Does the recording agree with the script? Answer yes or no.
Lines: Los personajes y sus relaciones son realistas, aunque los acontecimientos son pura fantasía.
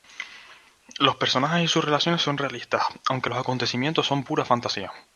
yes